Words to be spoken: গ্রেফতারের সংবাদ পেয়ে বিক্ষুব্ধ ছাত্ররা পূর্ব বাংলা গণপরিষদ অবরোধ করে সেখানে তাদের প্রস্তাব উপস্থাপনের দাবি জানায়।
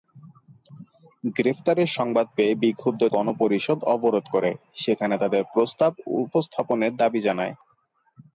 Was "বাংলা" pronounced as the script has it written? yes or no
no